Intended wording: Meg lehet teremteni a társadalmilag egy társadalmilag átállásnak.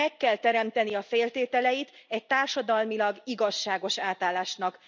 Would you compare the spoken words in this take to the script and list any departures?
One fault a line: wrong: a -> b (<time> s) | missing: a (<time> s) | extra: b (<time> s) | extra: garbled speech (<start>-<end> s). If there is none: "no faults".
wrong: lehet -> kell (0.2 s)
wrong: társadalmilag -> feltételeit (1.0 s)
extra: igazságos (3.2 s)